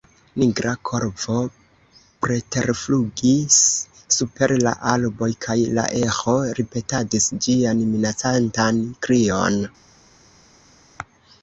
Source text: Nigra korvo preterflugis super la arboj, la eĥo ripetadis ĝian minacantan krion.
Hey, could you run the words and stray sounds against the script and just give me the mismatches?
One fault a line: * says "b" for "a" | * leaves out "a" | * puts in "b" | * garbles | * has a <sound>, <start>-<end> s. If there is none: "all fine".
* puts in "kaj"